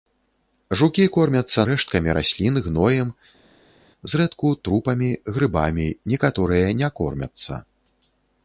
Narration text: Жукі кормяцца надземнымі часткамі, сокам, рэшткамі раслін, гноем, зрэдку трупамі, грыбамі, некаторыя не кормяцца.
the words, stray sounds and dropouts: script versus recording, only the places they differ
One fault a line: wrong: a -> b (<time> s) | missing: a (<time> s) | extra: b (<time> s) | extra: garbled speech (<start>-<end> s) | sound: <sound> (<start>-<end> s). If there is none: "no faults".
missing: надземнымі часткамі сокам (1.6 s)